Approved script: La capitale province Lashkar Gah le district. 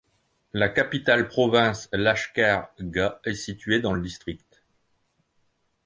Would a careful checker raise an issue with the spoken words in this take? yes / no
yes